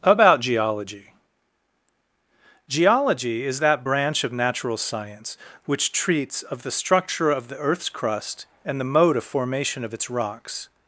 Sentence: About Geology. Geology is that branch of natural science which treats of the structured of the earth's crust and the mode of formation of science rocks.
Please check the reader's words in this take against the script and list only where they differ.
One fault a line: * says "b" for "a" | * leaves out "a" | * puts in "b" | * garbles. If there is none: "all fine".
* says "structure" for "structured"
* says "its" for "science"